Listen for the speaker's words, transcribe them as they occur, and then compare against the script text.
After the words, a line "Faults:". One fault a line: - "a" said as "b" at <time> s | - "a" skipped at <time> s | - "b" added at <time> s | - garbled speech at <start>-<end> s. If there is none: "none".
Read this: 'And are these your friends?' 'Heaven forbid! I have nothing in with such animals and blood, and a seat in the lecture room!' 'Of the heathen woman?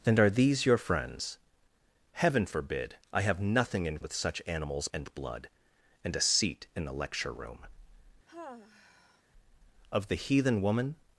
'And are these your friends?' 'Heaven forbid! I have nothing in with such animals and blood, and a seat in the lecture room!' 'Of the heathen woman?
Faults:
none